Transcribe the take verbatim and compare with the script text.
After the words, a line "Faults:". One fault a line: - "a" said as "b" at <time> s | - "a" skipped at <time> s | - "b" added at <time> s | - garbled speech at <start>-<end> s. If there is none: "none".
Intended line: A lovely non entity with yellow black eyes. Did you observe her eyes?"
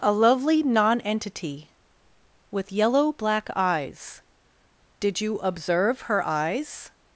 A lovely non entity with yellow black eyes. Did you observe her eyes?"
Faults:
none